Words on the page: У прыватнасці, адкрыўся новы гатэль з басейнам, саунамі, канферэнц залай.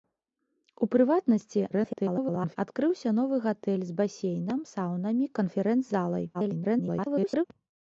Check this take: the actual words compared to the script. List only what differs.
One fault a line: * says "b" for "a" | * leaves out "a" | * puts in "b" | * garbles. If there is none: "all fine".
* garbles
* garbles